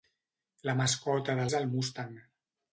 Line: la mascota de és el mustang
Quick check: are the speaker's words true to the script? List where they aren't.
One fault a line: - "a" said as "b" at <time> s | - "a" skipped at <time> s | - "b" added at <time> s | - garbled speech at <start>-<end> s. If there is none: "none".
none